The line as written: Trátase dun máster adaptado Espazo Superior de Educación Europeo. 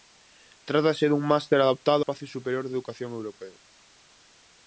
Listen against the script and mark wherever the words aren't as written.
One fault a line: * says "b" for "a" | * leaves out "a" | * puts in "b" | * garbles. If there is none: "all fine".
all fine